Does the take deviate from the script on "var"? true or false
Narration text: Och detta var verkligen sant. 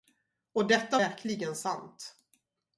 true